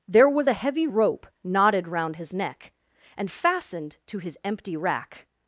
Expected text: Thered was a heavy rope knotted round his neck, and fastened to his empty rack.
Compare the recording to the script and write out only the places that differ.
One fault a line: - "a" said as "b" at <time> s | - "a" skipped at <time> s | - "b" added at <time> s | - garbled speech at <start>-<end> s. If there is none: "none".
- "Thered" said as "There" at 0.1 s